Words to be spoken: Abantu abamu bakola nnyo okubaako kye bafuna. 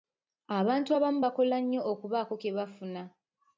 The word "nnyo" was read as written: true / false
true